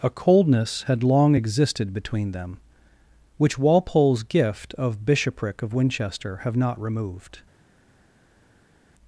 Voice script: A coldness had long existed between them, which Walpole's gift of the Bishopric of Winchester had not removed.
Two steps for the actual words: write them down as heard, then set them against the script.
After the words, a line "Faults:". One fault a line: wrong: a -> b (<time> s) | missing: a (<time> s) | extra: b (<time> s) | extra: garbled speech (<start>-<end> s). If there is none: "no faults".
A coldness had long existed between them, which Walpole's gift of Bishopric of Winchester have not removed.
Faults:
missing: the (5.0 s)
wrong: had -> have (6.4 s)